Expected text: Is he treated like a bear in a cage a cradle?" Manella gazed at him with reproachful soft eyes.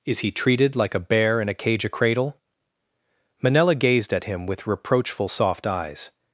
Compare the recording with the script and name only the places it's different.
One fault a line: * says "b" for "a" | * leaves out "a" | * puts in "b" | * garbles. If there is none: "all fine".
all fine